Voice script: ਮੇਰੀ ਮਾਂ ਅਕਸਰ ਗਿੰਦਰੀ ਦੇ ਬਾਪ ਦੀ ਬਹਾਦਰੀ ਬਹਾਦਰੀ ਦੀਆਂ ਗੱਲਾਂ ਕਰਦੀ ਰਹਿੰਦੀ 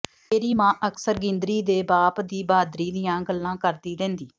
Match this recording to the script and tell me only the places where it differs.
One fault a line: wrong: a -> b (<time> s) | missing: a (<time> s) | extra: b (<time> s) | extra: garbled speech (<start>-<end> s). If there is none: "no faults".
missing: ਬਹਾਦਰੀ (2.9 s)